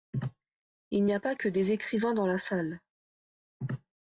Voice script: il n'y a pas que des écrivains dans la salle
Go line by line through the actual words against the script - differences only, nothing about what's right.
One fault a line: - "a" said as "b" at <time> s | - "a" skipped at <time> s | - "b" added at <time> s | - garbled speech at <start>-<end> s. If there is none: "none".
none